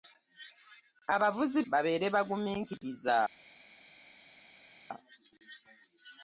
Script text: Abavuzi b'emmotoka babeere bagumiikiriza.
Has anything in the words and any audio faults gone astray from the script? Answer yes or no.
yes